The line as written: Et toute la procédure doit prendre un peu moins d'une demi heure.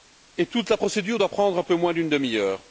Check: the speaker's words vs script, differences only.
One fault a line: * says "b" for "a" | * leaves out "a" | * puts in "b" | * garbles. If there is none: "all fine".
all fine